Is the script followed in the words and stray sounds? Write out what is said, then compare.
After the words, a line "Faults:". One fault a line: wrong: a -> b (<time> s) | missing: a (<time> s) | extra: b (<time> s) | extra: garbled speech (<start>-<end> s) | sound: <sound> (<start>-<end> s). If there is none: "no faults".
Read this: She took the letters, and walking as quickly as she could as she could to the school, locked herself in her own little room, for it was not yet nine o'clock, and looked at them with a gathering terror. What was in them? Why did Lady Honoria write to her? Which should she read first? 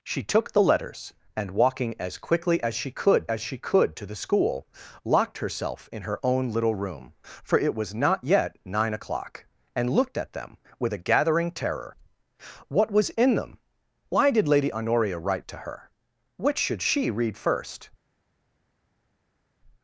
She took the letters, and walking as quickly as she could as she could to the school, locked herself in her own little room, for it was not yet nine o'clock, and looked at them with a gathering terror. What was in them? Why did Lady Honoria write to her? Which should she read first?
Faults:
no faults